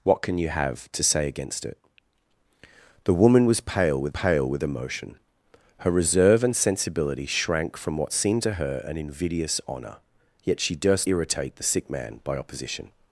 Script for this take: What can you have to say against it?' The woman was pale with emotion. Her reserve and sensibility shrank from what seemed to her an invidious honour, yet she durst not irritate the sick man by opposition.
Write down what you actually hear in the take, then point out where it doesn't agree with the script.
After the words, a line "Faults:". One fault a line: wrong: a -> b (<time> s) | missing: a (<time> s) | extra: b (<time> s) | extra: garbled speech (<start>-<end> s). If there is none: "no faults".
What can you have to say against it?' The woman was pale with pale with emotion. Her reserve and sensibility shrank from what seemed to her an invidious honour, yet she durst irritate the sick man by opposition.
Faults:
extra: pale with (4.1 s)
missing: not (11.1 s)